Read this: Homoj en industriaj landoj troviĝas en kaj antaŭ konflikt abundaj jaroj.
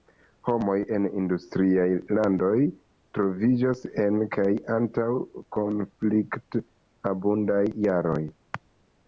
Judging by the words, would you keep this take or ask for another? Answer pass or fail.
pass